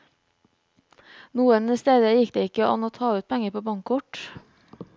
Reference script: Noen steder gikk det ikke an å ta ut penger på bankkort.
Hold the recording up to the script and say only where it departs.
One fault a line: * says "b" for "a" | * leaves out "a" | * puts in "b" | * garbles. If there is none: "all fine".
all fine